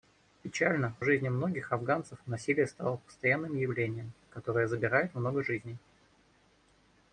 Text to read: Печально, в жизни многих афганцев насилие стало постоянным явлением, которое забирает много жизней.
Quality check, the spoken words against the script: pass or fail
pass